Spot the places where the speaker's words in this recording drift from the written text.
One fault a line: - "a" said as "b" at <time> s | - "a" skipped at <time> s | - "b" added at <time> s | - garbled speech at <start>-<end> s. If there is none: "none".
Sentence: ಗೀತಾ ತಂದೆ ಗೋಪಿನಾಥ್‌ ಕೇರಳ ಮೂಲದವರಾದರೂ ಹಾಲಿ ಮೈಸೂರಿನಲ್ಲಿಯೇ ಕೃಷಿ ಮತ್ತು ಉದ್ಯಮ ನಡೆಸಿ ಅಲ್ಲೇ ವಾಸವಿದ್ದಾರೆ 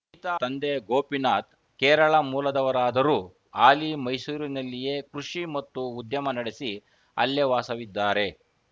none